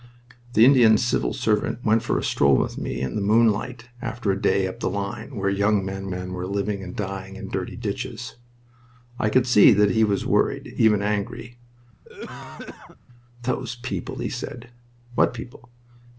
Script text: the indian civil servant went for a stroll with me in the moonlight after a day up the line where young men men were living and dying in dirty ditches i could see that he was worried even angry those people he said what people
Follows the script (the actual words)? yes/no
yes